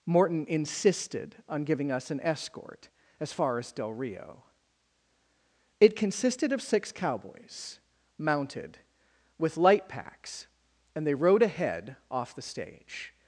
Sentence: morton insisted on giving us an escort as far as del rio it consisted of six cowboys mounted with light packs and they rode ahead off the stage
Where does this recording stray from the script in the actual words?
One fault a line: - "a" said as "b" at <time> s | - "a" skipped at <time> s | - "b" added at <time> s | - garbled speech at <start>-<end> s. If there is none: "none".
none